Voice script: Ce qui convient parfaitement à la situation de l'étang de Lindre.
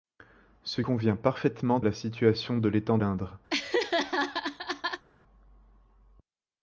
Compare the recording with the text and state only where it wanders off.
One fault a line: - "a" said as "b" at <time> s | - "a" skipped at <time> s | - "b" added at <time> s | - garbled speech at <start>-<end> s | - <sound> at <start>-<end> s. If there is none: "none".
- "qui" skipped at 0.8 s
- "à" skipped at 1.8 s
- "de" skipped at 3.0 s
- laugh at 3.5-5.0 s